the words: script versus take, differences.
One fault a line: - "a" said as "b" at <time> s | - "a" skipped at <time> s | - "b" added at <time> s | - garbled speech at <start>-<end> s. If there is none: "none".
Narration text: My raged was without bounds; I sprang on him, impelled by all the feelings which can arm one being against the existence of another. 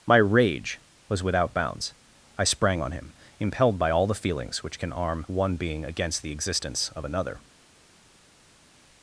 - "raged" said as "rage" at 0.2 s